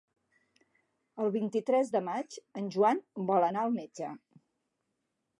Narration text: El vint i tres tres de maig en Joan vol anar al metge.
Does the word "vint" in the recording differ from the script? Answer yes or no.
no